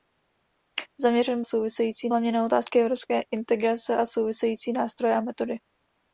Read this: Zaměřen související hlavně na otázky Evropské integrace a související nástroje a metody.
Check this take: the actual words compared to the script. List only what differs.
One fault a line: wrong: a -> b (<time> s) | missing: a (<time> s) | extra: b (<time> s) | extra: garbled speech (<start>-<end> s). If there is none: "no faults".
no faults